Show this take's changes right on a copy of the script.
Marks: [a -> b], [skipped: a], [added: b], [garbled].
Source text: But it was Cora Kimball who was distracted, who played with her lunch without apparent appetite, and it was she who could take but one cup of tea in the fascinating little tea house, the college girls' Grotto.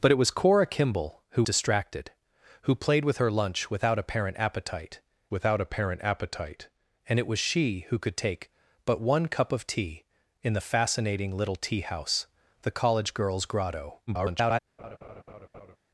But it was Cora Kimball who [skipped: was] distracted, who played with her lunch without apparent appetite, [added: without apparent appetite] and it was she who could take but one cup of tea in the fascinating little tea house, the college girls' Grotto. [garbled]